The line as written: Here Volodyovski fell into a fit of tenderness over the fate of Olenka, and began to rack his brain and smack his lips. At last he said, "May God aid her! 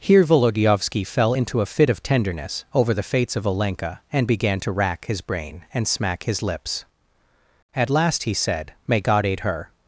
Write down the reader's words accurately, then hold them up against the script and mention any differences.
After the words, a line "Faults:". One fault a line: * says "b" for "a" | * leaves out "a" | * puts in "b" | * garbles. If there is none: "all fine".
Here Volodyovski fell into a fit of tenderness over the fates of Olenka, and began to rack his brain and smack his lips. At last he said, "May God aid her!
Faults:
* says "fates" for "fate"